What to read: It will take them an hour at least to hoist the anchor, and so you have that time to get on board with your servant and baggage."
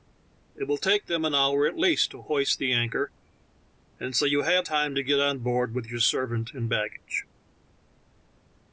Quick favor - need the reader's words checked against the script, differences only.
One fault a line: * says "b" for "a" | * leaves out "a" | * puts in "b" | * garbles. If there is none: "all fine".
* leaves out "that"